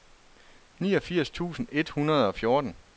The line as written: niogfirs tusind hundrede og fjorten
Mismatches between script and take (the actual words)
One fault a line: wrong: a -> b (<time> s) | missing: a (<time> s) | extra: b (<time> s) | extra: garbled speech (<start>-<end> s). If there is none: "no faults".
extra: et (1.7 s)